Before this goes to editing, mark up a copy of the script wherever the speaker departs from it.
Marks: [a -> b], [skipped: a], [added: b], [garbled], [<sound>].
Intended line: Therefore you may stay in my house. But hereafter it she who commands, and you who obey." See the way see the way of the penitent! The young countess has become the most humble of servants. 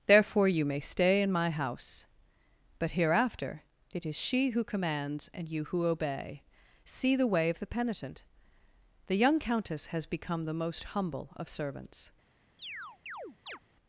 Therefore you may stay in my house. But hereafter it [added: is] she who commands, and you who obey." See the way [skipped: see the way] of the penitent! The young countess has become the most humble of servants. [chirp]